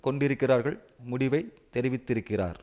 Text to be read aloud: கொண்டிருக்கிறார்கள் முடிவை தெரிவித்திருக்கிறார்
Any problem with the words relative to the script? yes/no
no